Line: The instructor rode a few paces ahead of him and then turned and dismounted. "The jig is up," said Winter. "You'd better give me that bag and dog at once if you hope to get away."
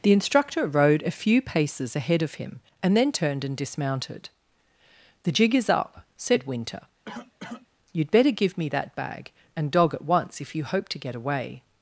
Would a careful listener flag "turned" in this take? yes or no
no